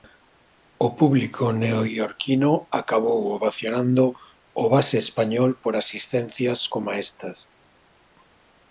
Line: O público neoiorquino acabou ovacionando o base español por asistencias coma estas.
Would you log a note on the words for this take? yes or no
no